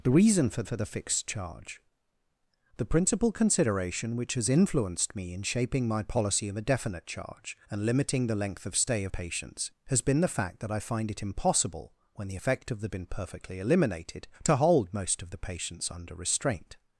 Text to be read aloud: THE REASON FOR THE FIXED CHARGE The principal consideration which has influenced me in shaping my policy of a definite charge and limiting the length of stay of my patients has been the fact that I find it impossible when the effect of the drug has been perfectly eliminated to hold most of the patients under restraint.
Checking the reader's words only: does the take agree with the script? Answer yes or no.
no